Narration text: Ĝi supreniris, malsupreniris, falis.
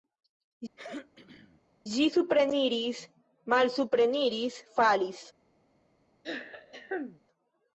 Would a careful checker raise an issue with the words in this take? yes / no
no